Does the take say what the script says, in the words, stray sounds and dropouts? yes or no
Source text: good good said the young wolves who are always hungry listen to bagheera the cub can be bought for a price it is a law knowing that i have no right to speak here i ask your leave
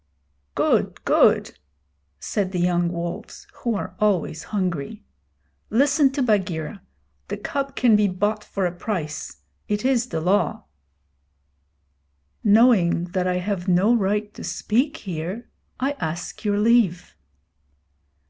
no